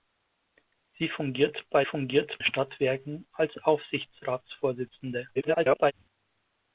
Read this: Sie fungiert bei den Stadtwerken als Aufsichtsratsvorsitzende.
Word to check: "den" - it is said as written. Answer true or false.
false